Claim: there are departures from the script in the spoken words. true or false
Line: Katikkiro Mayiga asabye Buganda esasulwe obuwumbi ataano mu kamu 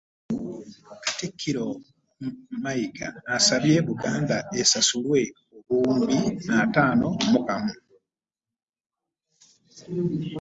false